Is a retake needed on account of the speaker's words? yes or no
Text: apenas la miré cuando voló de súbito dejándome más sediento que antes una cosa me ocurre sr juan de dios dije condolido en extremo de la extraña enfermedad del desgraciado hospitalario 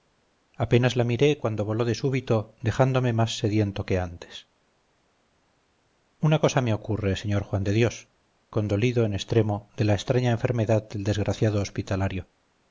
yes